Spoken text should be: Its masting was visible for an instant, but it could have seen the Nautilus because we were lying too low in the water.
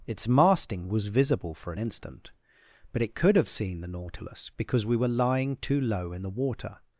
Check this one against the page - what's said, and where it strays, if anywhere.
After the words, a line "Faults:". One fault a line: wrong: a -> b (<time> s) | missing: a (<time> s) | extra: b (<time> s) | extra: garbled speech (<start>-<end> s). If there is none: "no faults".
Its masting was visible for an instant, but it could have seen the Nautilus because we were lying too low in the water.
Faults:
no faults